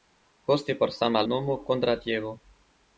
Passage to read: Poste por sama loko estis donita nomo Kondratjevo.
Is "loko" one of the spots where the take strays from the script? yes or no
yes